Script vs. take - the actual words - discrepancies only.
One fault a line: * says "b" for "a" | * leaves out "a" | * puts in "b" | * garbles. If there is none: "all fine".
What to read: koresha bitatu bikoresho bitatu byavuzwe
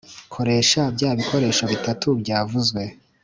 * says "bya" for "bitatu"